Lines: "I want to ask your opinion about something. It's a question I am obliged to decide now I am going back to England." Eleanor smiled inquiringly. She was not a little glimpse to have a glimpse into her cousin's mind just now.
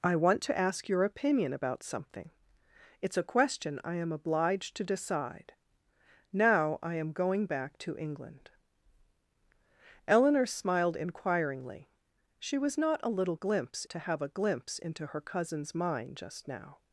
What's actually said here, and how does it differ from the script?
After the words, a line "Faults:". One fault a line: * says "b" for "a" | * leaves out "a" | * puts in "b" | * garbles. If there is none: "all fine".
"I want to ask your opinion about something. It's a question I am obliged to decide now I am going back to England." Eleanor smiled inquiringly. She was not a little glimpse to have a glimpse into her cousin's mind just now.
Faults:
all fine